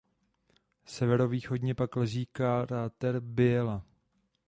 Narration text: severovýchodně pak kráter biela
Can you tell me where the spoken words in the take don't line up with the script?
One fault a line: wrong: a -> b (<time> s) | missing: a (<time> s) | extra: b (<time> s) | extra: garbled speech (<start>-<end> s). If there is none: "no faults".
extra: leží (2.0 s)